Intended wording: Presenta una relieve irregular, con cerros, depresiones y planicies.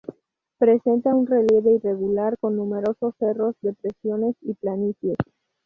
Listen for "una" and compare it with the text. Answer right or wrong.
wrong